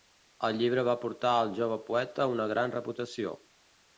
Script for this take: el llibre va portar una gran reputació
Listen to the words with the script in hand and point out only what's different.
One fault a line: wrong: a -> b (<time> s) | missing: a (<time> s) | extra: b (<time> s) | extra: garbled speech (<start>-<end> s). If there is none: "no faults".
extra: al jove poeta (1.4 s)